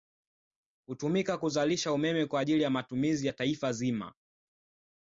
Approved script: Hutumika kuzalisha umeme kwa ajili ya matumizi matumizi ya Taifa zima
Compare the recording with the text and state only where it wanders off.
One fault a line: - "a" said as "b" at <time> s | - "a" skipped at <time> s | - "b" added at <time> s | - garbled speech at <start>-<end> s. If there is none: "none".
- "matumizi" skipped at 3.3 s